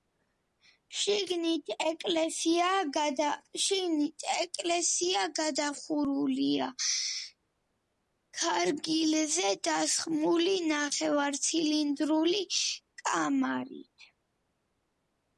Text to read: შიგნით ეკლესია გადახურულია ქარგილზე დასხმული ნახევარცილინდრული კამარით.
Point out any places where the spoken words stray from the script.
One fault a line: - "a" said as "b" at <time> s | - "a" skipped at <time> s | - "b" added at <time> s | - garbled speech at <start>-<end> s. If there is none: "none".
none